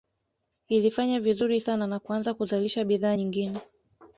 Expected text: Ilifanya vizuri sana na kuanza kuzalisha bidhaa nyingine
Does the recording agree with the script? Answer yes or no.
yes